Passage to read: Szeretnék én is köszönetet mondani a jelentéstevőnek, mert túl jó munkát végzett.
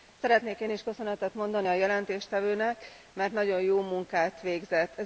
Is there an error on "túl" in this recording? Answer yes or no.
yes